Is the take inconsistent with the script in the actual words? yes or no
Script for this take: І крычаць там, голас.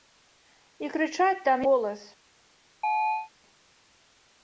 no